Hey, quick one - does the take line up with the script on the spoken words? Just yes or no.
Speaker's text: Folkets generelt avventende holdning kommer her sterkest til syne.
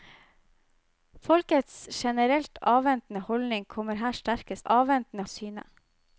no